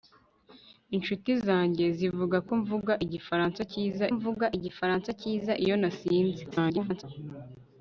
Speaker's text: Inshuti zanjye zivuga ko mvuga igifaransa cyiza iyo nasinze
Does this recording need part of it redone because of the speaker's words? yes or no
yes